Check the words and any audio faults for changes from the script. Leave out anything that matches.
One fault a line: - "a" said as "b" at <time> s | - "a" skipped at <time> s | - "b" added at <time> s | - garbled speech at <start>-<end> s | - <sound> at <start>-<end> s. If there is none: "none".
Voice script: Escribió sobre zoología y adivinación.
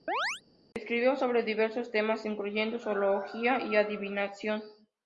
- chirp at 0.1-0.4 s
- "diversos temas incluyendo" added at 1.4 s